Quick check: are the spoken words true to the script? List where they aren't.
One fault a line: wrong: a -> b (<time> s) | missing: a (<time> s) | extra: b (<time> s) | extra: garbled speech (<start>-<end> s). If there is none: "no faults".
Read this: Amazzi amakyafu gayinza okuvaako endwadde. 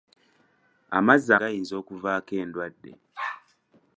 missing: amakyafu (1.3 s)